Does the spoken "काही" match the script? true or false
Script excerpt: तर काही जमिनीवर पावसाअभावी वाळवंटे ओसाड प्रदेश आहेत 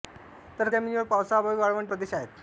false